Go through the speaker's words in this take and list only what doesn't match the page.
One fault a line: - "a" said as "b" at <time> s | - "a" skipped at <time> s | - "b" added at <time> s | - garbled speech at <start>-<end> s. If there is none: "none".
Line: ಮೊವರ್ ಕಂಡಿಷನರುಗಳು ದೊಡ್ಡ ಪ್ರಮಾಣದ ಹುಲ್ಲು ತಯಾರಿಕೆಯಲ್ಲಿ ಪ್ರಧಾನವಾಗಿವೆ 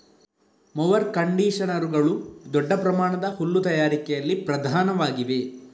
none